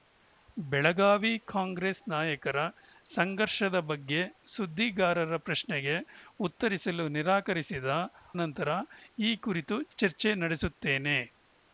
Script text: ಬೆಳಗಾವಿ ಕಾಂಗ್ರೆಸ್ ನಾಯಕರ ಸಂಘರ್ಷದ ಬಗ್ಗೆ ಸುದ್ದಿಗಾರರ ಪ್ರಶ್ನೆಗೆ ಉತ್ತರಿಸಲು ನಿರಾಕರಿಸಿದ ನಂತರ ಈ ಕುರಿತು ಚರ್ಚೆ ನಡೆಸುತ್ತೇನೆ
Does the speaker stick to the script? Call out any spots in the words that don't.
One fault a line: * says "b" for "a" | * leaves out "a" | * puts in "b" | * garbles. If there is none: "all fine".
all fine